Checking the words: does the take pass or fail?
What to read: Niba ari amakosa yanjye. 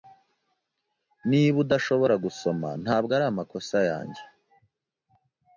fail